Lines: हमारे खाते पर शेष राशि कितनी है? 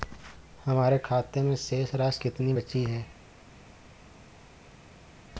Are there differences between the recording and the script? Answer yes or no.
yes